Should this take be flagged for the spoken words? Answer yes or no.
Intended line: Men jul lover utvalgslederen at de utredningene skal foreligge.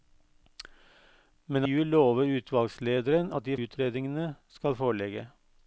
no